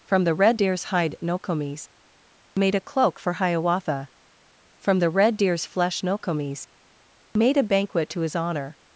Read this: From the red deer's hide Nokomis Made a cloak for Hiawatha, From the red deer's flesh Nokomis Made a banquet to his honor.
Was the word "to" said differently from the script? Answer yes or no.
no